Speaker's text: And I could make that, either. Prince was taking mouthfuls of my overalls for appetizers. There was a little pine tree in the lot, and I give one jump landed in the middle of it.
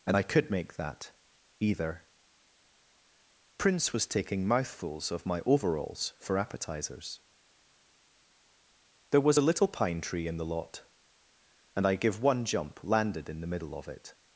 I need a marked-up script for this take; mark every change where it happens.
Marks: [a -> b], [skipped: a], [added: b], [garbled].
And I could make that, either. Prince was taking mouthfuls of my overalls for appetizers. There was a little pine tree in the lot, and I give one jump landed in the middle of it.